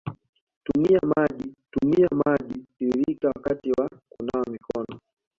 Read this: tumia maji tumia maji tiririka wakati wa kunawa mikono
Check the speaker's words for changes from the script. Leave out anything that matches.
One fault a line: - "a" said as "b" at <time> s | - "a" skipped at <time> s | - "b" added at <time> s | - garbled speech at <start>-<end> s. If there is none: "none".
none